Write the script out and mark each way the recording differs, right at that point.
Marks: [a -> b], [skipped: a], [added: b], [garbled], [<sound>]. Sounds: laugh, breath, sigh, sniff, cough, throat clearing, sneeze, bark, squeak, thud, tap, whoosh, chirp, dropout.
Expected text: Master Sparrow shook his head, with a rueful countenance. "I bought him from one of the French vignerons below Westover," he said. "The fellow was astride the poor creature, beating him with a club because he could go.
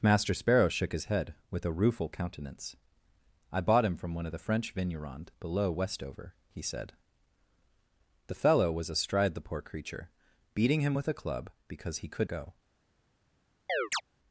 Master Sparrow shook his head, with a rueful countenance. "I bought him from one of the French vignerons below Westover," he said. "The fellow was astride the poor creature, beating him with a club because he could go. [chirp]